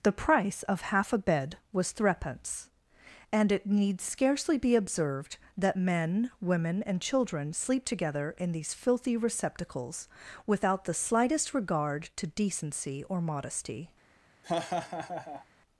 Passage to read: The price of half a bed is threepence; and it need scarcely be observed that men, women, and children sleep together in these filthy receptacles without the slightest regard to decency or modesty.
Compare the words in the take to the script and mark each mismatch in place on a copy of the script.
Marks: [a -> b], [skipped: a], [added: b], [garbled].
The price of half a bed [is -> was] threepence; and it need scarcely be observed that men, women, and children sleep together in these filthy receptacles without the slightest regard to decency or modesty.